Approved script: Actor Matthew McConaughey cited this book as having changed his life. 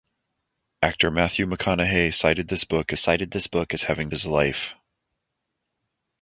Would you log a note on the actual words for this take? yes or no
yes